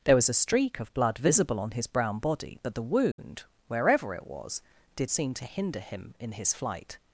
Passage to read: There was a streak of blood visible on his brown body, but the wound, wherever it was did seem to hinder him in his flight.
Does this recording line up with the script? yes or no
yes